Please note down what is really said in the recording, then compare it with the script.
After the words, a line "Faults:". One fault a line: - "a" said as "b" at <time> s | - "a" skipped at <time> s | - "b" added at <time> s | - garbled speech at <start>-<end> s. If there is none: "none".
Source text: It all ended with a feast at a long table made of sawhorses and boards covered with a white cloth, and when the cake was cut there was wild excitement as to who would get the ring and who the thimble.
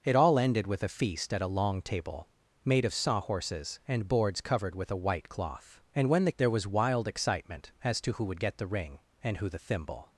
It all ended with a feast at a long table made of sawhorses and boards covered with a white cloth, and when the there was wild excitement as to who would get the ring and who the thimble.
Faults:
- "cake was cut" skipped at 6.3 s